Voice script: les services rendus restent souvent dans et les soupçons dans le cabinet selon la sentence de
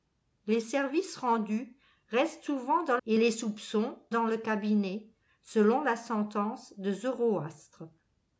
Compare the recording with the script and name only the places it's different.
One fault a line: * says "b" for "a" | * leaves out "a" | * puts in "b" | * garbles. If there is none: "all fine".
all fine